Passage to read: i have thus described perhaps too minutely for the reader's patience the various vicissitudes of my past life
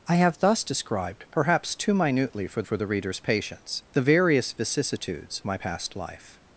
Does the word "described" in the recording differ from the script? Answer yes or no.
no